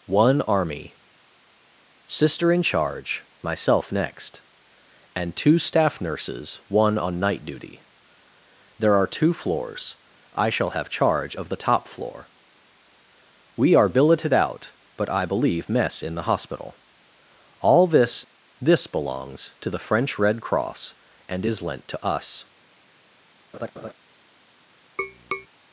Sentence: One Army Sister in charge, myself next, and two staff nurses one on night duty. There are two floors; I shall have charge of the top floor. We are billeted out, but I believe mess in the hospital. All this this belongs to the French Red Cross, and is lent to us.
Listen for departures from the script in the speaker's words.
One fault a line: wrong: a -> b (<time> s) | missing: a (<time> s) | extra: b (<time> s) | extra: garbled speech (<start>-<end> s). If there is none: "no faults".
no faults